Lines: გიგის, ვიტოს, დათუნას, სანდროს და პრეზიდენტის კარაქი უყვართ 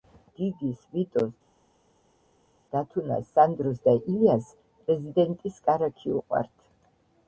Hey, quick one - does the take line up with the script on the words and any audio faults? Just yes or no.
no